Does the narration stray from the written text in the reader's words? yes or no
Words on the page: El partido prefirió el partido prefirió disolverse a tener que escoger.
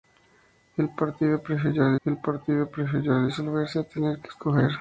no